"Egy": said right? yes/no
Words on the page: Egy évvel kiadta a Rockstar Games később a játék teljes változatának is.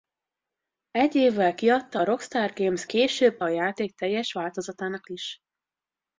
yes